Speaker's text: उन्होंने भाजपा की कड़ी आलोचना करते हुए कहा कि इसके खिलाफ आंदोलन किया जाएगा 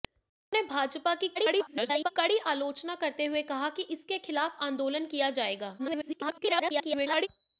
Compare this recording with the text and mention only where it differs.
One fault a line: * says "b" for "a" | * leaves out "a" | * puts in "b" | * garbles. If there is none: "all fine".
* garbles
* garbles